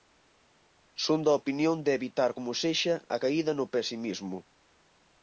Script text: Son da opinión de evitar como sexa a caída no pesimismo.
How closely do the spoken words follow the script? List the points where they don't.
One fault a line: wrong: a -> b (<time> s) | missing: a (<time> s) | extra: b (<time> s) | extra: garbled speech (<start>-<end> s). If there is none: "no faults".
no faults